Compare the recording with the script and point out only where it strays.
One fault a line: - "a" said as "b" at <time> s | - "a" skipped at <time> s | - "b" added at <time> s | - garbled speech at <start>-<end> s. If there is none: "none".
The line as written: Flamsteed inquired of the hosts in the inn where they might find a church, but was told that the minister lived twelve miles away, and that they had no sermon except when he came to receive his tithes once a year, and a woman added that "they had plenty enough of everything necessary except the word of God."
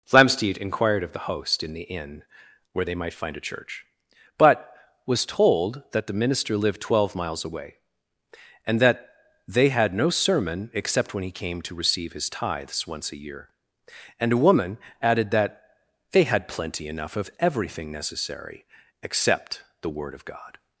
- "hosts" said as "host" at 1.3 s